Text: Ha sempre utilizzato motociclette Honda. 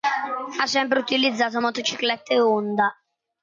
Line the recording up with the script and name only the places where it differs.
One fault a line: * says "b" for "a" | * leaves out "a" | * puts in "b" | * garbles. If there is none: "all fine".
all fine